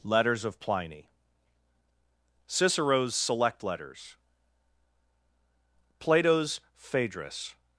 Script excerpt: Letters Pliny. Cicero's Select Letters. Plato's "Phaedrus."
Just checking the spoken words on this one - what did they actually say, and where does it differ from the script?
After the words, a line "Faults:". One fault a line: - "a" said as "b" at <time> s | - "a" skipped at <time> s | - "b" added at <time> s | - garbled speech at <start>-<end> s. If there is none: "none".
Letters of Pliny. Cicero's Select Letters. Plato's "Phaedrus."
Faults:
- "of" added at 0.5 s